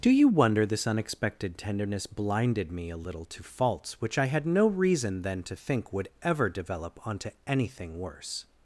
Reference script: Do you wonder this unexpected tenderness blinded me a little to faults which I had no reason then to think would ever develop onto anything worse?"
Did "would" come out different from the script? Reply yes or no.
no